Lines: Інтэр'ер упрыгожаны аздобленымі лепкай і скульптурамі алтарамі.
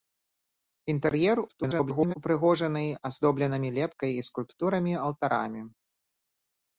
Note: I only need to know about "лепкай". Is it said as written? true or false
true